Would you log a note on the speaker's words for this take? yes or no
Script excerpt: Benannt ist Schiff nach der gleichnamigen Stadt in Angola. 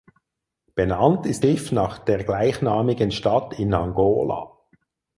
no